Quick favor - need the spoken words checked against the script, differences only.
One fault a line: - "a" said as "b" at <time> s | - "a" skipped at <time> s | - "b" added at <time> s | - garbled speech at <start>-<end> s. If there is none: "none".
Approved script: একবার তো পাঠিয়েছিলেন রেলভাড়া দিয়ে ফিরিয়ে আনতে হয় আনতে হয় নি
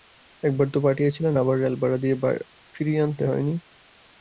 - "আবার" added at 1.4 s
- "আনতে হয়" skipped at 3.4 s